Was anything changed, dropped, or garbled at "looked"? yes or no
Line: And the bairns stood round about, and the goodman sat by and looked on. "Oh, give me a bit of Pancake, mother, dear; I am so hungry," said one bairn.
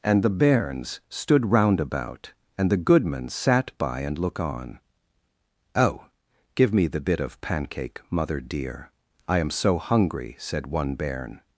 yes